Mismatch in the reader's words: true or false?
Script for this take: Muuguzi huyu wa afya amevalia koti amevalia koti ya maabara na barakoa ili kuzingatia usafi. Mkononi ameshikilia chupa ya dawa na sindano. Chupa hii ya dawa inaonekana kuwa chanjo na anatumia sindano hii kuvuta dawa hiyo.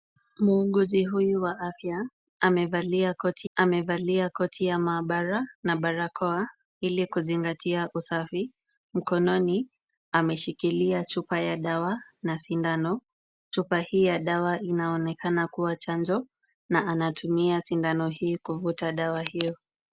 false